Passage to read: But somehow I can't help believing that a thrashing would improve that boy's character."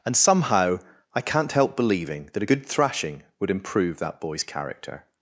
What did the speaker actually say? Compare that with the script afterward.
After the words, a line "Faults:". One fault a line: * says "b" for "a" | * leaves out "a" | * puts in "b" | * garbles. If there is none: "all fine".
And somehow I can't help believing that a good thrashing would improve that boy's character."
Faults:
* says "And" for "But"
* puts in "good"